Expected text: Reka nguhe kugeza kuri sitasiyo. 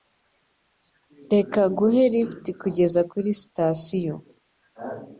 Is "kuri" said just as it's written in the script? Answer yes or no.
yes